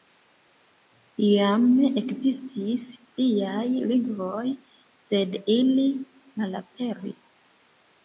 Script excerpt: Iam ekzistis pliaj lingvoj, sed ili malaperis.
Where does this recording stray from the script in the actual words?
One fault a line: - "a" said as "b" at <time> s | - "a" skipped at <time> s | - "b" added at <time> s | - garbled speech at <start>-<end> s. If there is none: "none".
none